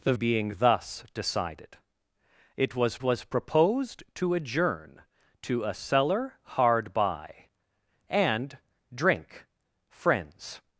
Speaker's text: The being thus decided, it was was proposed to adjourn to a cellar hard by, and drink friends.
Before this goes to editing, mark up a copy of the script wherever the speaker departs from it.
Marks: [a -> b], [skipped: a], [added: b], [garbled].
The being thus decided, it was was proposed to adjourn to a cellar hard by, and drink friends.